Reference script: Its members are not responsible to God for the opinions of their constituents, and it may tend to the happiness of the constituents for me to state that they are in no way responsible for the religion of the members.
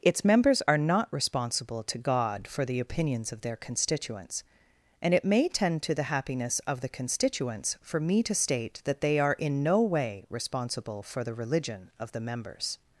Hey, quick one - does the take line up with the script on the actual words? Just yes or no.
yes